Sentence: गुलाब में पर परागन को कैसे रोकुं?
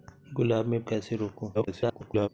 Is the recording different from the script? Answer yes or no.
yes